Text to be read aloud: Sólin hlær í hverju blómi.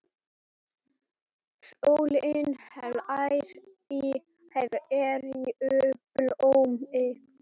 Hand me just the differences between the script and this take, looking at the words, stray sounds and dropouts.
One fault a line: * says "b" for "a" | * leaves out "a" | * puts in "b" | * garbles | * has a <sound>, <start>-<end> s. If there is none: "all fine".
* has a dropout, 4.7-4.7 s